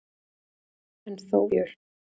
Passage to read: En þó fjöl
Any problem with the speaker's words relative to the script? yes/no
no